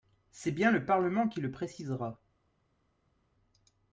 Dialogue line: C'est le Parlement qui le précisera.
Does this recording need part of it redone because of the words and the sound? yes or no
yes